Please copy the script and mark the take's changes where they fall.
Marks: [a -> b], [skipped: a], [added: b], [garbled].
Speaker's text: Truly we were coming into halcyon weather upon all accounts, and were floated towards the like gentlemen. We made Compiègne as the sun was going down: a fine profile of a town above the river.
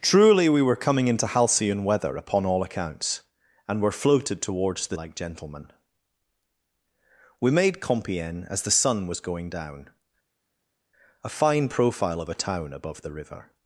Truly we were coming into halcyon weather upon all accounts, and were floated towards the like gentlemen. We made Compiègne as the sun was going down: a fine profile of a town above the river.